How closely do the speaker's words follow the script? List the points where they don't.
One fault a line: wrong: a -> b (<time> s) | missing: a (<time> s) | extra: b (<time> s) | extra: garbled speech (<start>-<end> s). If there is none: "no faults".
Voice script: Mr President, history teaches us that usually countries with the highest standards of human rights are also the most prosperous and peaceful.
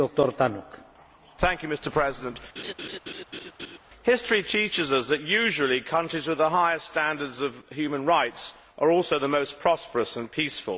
no faults